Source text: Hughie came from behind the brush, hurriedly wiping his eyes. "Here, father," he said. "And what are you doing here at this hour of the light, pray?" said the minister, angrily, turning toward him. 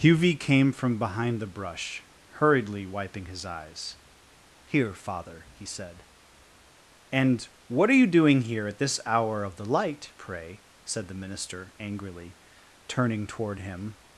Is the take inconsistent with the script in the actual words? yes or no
no